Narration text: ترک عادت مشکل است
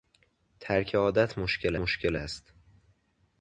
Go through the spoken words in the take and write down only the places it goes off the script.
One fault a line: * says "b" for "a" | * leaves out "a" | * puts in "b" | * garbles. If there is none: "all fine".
* puts in "مشکل"